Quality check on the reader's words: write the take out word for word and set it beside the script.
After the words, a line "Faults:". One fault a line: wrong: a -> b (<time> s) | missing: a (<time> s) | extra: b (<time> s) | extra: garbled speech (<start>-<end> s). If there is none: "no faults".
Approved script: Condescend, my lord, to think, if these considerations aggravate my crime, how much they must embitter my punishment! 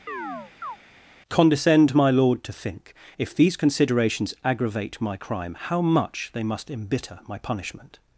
Condescend, my lord, to think, if these considerations aggravate my crime, how much they must embitter my punishment!
Faults:
no faults